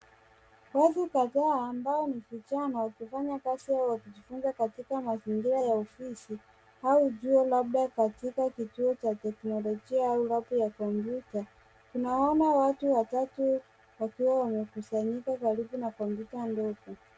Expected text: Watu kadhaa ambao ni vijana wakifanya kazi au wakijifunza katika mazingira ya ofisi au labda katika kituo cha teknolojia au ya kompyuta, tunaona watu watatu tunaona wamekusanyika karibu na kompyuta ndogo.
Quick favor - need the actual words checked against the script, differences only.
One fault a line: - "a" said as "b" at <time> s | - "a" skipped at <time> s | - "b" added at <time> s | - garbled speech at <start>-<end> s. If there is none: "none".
- "chuo" added at 7.1 s
- "labu" added at 10.3 s
- "tunaona" said as "wakiwa" at 14.0 s